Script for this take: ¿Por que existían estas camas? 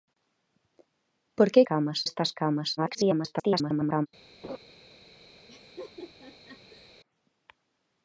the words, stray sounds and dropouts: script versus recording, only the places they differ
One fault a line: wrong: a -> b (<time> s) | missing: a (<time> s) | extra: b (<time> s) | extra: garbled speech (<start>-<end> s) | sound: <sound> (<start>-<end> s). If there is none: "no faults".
wrong: existían -> camas (1.7 s)
extra: garbled speech (2.8-4.1 s)
sound: laugh (4.4-4.6 s)
sound: laugh (5.5-6.9 s)